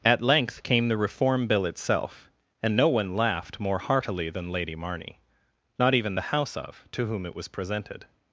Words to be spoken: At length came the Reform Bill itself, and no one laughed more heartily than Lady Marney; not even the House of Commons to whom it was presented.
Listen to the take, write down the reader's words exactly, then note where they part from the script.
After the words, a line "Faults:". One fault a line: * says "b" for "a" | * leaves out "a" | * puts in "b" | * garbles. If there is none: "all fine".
At length came the Reform Bill itself, and no one laughed more heartily than Lady Marney; not even the House of to whom it was presented.
Faults:
* leaves out "Commons"